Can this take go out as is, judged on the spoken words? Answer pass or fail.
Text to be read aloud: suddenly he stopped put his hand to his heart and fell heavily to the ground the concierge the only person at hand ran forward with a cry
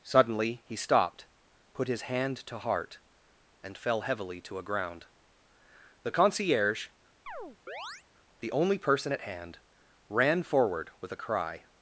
fail